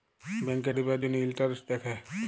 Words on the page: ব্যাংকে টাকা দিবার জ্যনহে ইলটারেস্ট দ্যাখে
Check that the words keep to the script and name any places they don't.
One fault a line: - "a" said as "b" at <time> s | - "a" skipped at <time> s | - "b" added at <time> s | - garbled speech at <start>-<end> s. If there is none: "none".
- "টাকা" skipped at 0.7 s